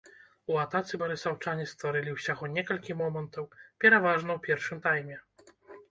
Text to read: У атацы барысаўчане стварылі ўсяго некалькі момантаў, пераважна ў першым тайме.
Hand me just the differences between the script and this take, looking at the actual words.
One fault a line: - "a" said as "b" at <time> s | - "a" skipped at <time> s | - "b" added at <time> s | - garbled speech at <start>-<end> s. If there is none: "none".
none